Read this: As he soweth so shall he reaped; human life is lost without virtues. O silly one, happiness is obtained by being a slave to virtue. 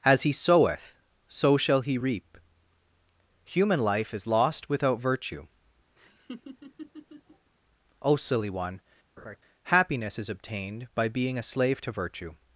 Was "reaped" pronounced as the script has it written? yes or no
no